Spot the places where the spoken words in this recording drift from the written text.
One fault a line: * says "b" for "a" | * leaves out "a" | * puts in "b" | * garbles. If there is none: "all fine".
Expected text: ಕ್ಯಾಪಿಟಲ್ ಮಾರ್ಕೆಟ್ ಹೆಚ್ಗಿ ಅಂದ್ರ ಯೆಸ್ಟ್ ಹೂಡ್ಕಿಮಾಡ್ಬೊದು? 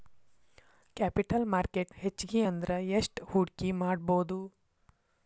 all fine